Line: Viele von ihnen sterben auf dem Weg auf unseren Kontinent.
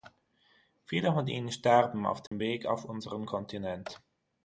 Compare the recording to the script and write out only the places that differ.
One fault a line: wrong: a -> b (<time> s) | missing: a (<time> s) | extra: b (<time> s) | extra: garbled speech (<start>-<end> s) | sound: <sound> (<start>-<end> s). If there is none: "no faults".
sound: dropout (2.3-2.3 s)